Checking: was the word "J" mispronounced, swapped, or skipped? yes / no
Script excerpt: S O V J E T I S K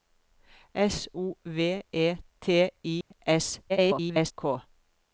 yes